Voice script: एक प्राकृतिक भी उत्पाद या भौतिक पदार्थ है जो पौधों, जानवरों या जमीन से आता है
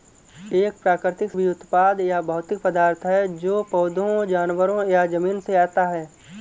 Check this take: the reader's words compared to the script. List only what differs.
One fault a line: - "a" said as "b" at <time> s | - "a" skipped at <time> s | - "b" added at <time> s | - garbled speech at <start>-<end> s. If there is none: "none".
none